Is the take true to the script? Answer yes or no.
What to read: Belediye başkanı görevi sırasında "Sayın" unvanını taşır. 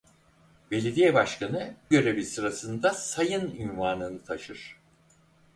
yes